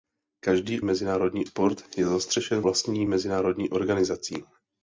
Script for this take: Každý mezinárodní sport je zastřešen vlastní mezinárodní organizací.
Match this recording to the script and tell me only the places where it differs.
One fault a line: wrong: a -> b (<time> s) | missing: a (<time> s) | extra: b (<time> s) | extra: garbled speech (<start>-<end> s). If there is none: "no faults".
no faults